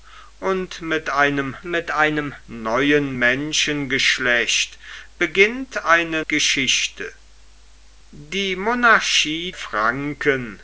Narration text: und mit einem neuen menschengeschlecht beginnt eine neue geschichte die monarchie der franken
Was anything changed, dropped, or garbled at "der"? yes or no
yes